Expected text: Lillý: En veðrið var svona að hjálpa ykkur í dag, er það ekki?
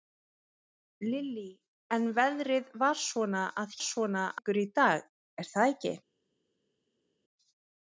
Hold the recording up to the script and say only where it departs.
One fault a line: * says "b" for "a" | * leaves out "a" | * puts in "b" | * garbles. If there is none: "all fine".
* says "svona" for "hjálpa"